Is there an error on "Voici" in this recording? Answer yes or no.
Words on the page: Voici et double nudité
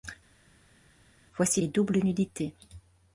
no